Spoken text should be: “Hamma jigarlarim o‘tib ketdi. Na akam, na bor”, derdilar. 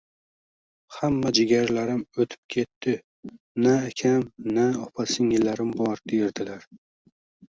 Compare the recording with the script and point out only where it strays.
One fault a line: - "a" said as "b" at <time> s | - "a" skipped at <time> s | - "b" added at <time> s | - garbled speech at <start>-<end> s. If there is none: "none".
- "opa singillarim" added at 4.8 s